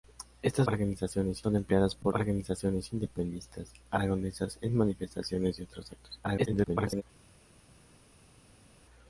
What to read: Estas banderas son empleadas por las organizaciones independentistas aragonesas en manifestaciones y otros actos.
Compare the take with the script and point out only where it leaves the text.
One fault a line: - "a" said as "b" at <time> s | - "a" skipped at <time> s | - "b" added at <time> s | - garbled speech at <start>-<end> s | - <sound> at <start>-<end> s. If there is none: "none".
- "banderas" said as "organizaciones" at 0.7 s
- "las" skipped at 2.1 s
- garbled speech at 6.2-7.0 s